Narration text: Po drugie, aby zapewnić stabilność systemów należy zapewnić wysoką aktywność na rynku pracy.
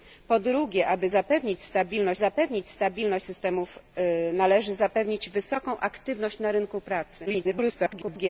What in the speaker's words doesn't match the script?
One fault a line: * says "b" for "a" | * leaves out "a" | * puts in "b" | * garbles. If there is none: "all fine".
* puts in "zapewnić stabilność"
* garbles